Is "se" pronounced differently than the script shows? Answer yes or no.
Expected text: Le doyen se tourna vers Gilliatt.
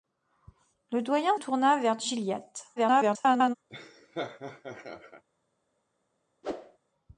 yes